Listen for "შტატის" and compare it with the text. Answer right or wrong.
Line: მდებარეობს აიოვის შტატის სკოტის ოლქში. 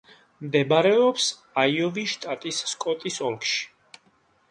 right